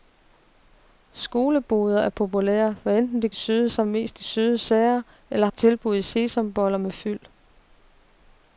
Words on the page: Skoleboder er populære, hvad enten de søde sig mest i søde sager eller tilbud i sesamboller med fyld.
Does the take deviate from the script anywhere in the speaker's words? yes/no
no